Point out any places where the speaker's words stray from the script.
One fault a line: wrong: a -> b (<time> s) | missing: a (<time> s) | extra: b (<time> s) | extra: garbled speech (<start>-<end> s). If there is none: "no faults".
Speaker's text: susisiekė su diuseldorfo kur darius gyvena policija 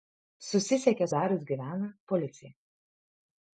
missing: su diuseldorfo kur (1.1 s)